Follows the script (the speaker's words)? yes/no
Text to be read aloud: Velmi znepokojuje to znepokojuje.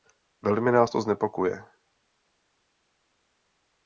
no